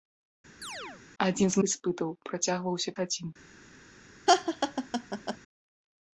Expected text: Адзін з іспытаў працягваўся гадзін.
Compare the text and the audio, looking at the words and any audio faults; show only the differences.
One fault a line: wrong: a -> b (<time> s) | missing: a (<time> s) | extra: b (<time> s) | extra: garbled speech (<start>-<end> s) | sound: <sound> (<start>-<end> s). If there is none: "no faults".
sound: chirp (0.6-1.0 s)
sound: laugh (4.3-5.4 s)